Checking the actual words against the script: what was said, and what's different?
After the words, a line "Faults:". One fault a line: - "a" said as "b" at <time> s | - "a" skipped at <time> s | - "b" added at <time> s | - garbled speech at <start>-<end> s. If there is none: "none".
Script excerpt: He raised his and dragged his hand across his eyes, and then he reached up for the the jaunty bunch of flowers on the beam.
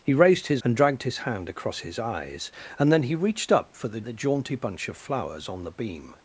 He raised his and dragged his hand across his eyes, and then he reached up for the the jaunty bunch of flowers on the beam.
Faults:
none